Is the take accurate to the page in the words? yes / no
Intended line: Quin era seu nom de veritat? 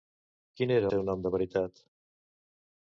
yes